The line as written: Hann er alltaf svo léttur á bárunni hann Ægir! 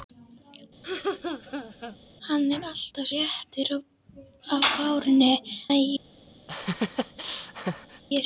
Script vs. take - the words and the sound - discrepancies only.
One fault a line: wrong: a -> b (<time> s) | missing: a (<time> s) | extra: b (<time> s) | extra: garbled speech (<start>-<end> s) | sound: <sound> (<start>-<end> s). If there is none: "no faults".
sound: laugh (0.8-2.0 s)
missing: svo (3.1 s)
missing: hann (5.3 s)
sound: laugh (6.5-8.0 s)